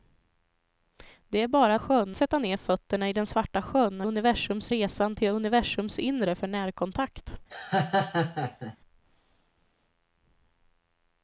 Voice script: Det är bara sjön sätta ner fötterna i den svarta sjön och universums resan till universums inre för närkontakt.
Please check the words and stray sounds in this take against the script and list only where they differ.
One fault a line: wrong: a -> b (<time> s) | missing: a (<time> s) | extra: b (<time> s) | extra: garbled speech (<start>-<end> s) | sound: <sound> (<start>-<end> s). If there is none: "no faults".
sound: laugh (7.5-8.8 s)